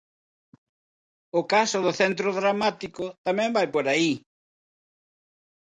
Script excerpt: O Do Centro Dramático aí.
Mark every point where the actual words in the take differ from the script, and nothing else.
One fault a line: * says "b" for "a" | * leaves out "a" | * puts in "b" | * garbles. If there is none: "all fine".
* puts in "Caso"
* puts in "tamén vai por"